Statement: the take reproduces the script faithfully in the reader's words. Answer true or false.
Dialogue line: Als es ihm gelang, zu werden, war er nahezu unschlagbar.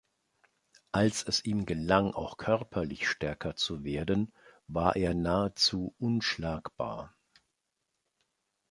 false